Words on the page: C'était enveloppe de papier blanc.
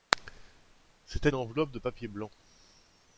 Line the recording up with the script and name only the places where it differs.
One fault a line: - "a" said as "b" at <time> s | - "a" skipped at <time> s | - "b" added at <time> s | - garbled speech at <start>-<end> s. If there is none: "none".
none